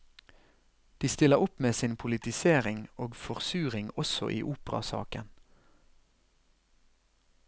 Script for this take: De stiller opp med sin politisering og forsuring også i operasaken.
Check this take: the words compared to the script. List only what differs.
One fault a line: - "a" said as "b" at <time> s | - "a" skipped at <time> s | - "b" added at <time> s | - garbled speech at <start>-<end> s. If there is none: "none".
none